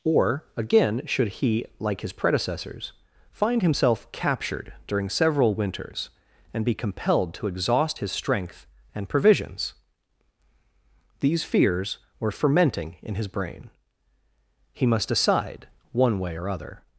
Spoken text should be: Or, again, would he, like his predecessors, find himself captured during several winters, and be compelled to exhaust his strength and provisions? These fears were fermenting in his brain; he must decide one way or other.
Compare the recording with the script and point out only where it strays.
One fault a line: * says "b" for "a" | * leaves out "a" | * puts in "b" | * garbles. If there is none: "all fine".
* says "should" for "would"